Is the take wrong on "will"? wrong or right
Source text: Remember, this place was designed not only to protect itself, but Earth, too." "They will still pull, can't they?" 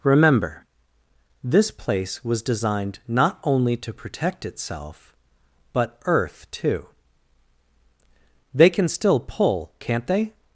wrong